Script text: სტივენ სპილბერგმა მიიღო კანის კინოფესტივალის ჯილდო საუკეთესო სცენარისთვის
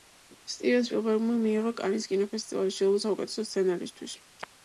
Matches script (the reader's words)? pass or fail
pass